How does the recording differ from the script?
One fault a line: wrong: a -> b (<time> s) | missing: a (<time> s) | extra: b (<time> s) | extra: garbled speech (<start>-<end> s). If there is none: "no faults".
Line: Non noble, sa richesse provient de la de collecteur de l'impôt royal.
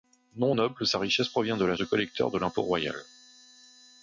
no faults